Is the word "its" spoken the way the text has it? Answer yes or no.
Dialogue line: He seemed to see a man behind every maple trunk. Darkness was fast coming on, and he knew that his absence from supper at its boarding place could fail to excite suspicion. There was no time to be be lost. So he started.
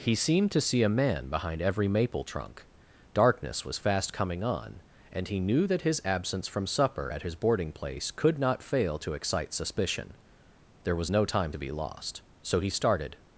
no